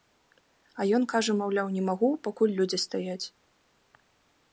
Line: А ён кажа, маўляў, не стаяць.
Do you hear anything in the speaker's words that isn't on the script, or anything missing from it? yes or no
yes